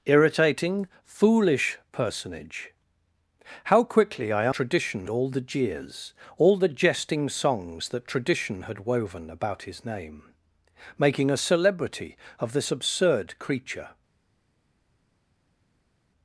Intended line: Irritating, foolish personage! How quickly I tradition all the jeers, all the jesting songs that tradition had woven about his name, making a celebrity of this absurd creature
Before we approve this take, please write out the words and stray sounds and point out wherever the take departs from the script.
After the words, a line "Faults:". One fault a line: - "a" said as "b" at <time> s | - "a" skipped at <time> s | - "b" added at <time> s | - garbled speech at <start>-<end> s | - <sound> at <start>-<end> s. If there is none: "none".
Irritating, foolish personage! How quickly I tradition all the jeers, all the jesting songs that tradition had woven about his name, making a celebrity of this absurd creature
Faults:
none